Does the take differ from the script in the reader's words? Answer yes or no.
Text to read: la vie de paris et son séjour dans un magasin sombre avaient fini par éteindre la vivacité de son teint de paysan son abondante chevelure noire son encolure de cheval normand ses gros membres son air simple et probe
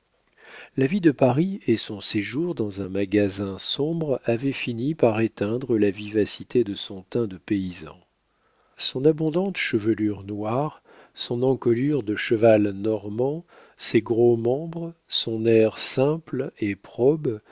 no